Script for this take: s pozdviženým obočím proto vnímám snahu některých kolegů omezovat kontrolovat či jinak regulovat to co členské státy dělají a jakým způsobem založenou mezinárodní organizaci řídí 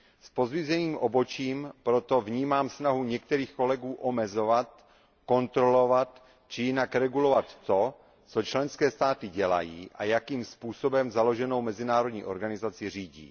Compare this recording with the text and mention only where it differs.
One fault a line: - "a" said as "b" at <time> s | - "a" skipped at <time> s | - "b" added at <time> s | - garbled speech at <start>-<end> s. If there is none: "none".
none